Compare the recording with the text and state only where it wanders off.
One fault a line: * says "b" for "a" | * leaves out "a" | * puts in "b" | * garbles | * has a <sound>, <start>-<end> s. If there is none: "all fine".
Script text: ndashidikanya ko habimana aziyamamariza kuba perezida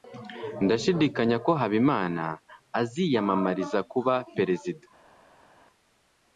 all fine